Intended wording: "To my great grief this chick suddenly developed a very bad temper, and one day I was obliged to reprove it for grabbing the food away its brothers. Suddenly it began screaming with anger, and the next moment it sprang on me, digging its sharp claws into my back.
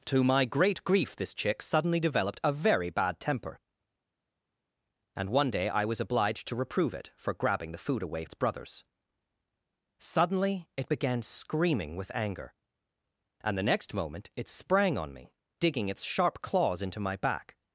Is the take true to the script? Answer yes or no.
yes